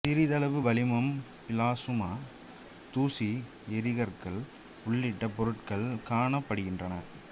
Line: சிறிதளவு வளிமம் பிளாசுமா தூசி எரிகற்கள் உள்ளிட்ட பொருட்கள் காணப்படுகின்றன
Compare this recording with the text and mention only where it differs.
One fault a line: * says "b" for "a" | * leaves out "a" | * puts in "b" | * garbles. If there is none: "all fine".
all fine